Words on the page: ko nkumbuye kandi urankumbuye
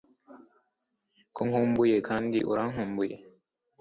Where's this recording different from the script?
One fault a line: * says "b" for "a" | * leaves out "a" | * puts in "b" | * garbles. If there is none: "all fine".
all fine